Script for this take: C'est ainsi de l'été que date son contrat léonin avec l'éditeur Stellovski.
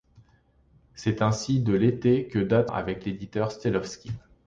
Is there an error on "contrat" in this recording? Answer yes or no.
yes